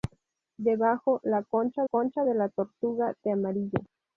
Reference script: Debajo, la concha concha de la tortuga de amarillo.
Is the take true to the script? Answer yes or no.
yes